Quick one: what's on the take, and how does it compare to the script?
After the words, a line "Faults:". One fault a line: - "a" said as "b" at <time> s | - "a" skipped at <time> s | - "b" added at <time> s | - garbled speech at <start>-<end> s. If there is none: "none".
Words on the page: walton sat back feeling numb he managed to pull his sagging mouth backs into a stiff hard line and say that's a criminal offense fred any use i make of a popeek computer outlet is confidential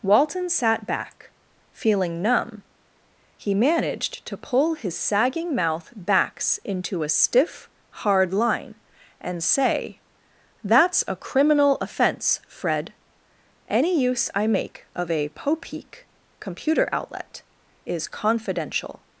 walton sat back feeling numb he managed to pull his sagging mouth backs into a stiff hard line and say that's a criminal offense fred any use i make of a popeek computer outlet is confidential
Faults:
none